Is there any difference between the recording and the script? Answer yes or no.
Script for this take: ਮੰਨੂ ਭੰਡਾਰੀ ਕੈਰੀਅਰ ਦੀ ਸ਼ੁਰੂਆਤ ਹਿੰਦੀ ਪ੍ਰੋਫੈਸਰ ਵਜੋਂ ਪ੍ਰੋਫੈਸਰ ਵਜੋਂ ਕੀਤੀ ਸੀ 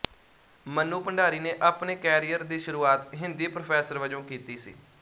yes